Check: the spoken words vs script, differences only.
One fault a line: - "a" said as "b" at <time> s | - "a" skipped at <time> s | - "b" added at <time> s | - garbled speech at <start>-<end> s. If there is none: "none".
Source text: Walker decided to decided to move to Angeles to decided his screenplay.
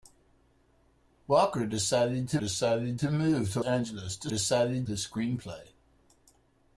none